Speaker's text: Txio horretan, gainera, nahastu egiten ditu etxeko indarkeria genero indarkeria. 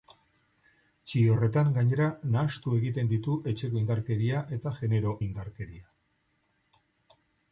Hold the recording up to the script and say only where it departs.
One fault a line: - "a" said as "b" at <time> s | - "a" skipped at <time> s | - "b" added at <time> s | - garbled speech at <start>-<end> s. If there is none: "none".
- "eta" added at 4.6 s